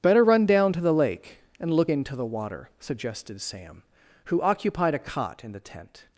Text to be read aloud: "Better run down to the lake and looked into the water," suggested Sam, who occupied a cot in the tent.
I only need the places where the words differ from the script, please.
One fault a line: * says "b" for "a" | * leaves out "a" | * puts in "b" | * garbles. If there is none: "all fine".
* says "look" for "looked"